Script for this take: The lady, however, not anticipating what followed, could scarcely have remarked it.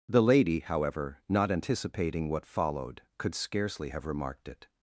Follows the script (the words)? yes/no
yes